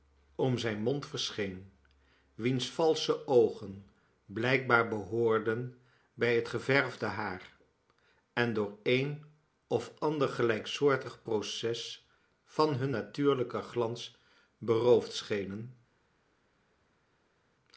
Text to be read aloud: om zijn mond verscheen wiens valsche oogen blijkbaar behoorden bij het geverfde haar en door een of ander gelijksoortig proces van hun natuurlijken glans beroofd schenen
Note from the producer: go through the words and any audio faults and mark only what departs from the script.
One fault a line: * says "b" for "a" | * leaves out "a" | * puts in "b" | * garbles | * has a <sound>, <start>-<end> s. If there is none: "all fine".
all fine